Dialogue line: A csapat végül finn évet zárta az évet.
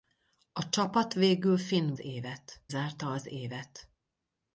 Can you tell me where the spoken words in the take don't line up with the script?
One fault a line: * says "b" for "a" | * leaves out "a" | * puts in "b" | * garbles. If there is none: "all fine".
all fine